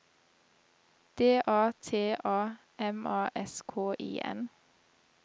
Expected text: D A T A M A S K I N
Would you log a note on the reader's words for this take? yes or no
no